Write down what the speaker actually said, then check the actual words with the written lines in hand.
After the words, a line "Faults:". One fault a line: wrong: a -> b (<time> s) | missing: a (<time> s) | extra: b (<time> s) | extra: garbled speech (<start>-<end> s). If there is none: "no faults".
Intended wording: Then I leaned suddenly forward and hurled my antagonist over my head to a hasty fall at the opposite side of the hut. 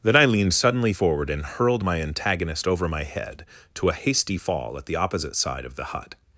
Then I leaned suddenly forward and hurled my antagonist over my head to a hasty fall at the opposite side of the hut.
Faults:
no faults